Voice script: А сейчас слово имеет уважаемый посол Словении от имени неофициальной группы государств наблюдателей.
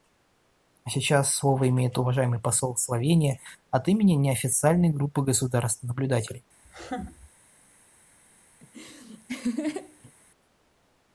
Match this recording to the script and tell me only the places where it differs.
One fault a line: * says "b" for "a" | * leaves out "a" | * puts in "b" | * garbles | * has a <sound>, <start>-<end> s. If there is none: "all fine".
* has a laugh, 6.6-7.3 s
* has a laugh, 8.6-10.1 s